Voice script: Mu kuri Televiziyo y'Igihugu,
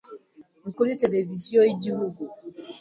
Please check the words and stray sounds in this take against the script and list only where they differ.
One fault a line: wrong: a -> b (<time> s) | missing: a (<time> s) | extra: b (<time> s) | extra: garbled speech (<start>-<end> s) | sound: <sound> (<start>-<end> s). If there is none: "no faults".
no faults